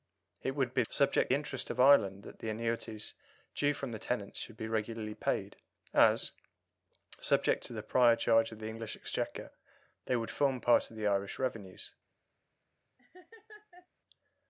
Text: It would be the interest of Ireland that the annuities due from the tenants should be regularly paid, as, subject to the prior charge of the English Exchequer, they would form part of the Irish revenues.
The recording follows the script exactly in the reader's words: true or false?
false